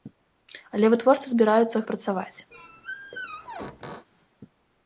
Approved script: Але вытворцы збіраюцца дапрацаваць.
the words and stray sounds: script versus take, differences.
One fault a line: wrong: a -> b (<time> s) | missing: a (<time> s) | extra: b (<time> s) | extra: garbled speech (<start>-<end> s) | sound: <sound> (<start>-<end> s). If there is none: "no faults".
sound: squeak (2.5-4.1 s)